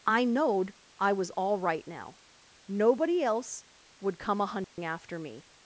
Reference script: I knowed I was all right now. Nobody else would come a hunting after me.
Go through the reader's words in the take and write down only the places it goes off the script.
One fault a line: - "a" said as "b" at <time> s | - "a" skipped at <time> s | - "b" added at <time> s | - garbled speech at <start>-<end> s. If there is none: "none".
none